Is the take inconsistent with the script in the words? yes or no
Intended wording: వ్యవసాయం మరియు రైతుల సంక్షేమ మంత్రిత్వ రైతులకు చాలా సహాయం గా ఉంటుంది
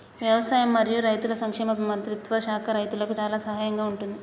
yes